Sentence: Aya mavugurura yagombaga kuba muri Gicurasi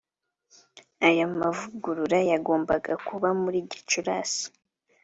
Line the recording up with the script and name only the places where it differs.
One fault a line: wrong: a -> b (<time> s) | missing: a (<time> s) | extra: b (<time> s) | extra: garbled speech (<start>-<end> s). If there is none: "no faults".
no faults